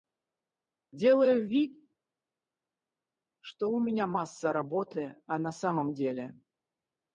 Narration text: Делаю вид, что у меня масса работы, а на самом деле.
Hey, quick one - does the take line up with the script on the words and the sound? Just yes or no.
yes